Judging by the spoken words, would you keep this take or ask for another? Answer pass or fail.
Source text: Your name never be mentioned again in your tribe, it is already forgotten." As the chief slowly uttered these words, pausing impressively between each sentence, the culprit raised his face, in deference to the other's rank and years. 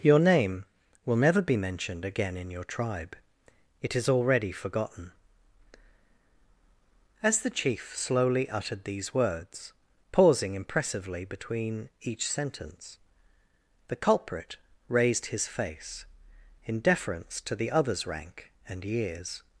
fail